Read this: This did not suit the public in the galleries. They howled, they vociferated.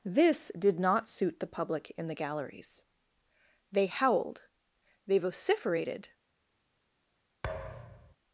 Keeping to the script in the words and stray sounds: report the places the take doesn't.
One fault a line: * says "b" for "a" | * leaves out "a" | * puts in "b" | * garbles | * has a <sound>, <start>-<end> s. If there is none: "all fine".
* has a thud, 7.4-8.2 s